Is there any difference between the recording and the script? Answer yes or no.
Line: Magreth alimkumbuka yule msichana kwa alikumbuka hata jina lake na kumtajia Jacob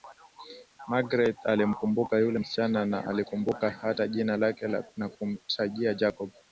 yes